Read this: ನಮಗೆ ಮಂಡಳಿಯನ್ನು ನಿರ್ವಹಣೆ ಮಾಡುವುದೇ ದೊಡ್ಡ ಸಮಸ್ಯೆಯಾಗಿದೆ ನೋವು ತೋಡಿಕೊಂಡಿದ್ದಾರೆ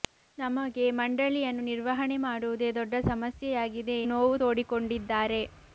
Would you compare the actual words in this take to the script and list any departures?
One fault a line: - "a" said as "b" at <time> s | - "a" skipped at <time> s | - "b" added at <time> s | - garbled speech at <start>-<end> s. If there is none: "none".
none